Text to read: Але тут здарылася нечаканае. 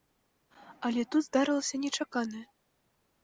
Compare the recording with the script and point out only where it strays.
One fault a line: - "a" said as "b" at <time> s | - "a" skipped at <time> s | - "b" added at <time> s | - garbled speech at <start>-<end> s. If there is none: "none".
none